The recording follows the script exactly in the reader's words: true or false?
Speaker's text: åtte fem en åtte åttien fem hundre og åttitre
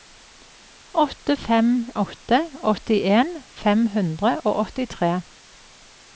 false